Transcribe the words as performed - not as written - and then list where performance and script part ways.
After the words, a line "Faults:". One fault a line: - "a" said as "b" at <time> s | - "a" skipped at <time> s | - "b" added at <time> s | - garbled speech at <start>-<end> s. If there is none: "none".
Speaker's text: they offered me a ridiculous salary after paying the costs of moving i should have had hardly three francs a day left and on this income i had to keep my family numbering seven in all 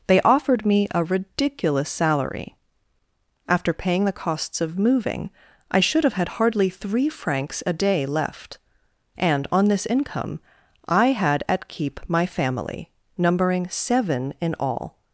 they offered me a ridiculous salary after paying the costs of moving i should have had hardly three francs a day left and on this income i had at keep my family numbering seven in all
Faults:
- "to" said as "at" at 11.5 s